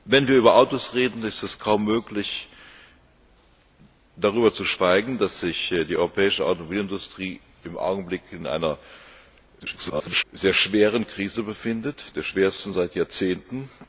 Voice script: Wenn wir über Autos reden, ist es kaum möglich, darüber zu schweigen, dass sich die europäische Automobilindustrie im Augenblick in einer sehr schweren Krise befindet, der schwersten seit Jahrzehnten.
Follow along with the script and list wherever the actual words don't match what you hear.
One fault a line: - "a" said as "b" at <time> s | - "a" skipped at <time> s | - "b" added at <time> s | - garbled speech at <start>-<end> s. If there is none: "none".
- garbled speech at 9.6-10.2 s